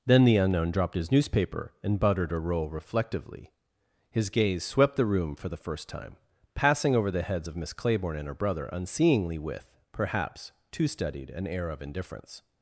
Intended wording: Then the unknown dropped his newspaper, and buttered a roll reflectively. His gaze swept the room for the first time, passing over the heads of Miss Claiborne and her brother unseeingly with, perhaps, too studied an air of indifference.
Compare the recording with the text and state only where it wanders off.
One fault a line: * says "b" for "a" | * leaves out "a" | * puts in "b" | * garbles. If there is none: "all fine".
all fine